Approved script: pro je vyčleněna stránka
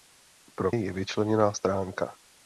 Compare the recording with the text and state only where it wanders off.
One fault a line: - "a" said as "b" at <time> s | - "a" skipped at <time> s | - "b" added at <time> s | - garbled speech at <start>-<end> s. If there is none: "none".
none